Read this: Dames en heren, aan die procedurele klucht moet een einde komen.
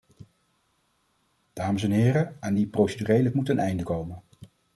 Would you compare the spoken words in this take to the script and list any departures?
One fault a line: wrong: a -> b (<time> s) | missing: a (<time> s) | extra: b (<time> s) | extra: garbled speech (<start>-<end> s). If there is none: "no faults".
missing: klucht (3.3 s)